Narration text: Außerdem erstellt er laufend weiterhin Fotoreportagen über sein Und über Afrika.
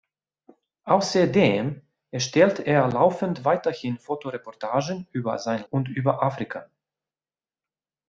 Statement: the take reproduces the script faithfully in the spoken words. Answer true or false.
true